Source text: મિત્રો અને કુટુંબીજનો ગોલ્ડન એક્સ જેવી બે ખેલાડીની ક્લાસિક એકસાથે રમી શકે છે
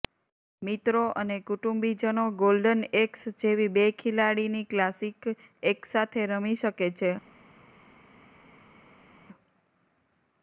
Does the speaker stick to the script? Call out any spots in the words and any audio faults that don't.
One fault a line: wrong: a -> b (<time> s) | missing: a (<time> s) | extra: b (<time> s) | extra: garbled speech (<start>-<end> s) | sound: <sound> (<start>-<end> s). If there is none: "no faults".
no faults